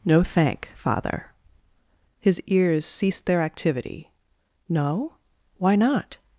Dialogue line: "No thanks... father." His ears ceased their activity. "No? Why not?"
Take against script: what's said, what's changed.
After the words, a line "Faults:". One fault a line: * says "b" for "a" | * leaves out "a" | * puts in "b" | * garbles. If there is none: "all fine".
"No thank... father." His ears ceased their activity. "No? Why not?"
Faults:
* says "thank" for "thanks"